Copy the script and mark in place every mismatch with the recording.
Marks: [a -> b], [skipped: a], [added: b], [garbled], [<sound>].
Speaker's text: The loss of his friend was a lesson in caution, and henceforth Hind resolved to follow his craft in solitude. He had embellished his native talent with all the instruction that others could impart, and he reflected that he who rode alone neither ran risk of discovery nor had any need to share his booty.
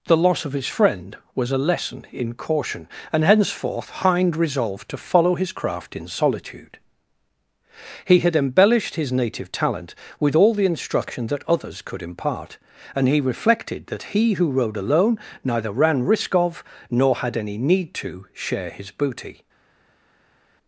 The loss of his friend was a lesson in caution, and henceforth Hind resolved to follow his craft in solitude. He had embellished his native talent with all the instruction that others could impart, and he reflected that he who rode alone neither ran risk of [skipped: discovery] nor had any need to share his booty.